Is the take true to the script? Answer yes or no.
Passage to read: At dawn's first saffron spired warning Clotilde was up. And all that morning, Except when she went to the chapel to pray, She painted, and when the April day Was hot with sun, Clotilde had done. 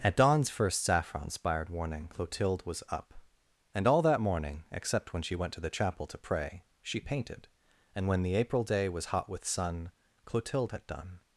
yes